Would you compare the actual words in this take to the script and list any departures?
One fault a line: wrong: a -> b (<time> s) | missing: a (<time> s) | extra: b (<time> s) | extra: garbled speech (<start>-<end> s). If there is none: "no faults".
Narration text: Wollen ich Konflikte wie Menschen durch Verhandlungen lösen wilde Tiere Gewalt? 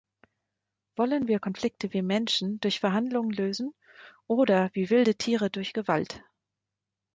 wrong: ich -> wir (1.3 s)
extra: oder wie (4.2 s)
extra: durch (5.5 s)